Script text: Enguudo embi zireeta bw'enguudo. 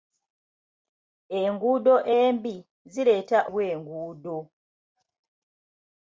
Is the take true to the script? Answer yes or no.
yes